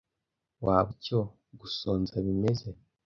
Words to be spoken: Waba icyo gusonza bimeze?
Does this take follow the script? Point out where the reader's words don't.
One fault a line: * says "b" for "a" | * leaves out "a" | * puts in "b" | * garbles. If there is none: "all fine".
all fine